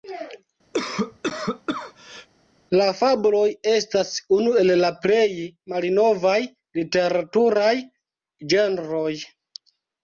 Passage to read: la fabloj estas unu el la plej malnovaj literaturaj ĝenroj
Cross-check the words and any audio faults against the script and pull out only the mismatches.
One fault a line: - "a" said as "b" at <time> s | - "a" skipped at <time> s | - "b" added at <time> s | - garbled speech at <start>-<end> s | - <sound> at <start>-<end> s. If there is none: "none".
- cough at 0.7-2.3 s